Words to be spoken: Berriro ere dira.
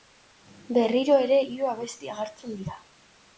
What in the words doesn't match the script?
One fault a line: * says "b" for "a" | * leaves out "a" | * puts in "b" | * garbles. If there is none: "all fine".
* puts in "hiru abesti agertzen"